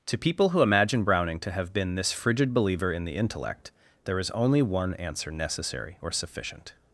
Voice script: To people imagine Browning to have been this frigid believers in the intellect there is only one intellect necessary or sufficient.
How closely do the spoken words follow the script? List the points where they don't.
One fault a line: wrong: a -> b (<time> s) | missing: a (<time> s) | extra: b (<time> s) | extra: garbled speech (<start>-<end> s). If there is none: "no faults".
extra: who (0.5 s)
wrong: believers -> believer (2.5 s)
wrong: intellect -> answer (5.0 s)